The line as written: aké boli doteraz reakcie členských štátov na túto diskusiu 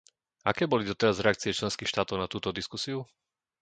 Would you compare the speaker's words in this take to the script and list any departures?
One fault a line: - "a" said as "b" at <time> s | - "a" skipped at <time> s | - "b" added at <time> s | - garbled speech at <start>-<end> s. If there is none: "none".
none